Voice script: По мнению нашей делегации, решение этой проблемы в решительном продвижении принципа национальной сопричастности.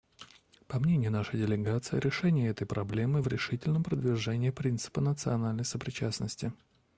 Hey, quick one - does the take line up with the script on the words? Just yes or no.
yes